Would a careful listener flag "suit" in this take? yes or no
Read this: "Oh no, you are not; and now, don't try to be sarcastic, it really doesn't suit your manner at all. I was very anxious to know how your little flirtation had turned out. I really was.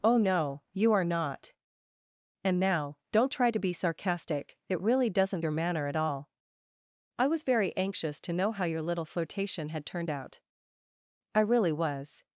yes